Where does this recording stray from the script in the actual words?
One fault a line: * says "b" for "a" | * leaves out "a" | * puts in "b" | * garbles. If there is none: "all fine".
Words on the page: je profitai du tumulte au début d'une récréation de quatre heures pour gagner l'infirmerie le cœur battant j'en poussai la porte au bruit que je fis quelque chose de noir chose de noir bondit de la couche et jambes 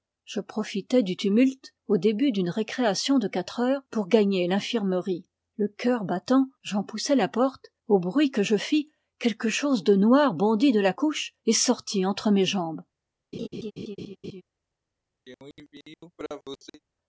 * leaves out "chose de noir"
* puts in "sortit entre mes"